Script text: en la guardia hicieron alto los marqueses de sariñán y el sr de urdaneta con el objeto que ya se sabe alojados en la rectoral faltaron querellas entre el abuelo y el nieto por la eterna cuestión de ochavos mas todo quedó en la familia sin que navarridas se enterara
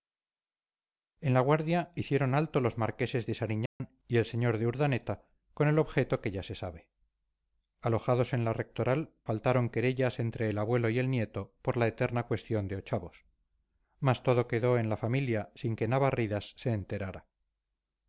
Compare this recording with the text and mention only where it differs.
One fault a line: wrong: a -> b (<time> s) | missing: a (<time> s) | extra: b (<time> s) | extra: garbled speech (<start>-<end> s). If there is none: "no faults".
no faults